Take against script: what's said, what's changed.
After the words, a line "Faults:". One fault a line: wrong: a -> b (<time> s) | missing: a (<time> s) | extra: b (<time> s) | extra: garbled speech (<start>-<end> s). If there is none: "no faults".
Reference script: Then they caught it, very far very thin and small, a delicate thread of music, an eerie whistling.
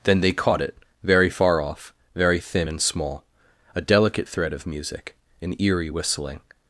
Then they caught it, very far off, very thin and small, a delicate thread of music, an eerie whistling.
Faults:
extra: off (1.6 s)